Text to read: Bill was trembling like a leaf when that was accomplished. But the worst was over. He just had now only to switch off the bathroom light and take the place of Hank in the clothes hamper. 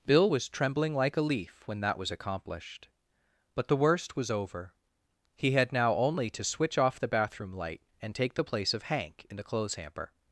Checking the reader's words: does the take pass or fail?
fail